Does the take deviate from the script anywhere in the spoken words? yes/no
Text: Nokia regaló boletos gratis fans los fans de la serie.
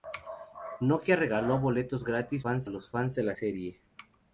no